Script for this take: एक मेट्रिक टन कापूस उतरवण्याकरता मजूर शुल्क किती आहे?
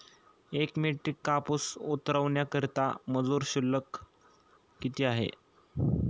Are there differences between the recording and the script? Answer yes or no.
yes